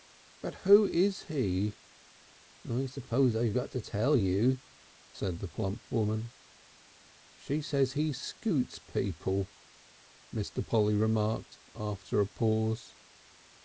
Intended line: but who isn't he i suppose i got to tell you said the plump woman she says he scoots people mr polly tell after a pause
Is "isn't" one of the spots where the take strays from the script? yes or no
yes